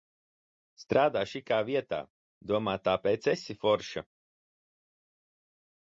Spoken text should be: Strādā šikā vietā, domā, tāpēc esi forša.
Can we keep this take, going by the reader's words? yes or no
yes